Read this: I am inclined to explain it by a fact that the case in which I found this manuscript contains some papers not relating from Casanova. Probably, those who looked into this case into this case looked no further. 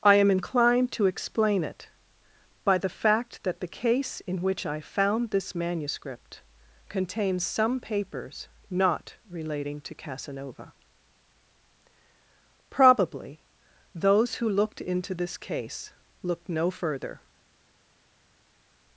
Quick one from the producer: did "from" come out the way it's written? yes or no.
no